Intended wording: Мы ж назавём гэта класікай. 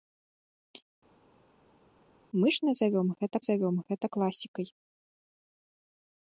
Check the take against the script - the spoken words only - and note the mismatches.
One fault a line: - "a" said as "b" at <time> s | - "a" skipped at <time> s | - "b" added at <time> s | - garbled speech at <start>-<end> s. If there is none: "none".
- "назавём гэта" added at 3.4 s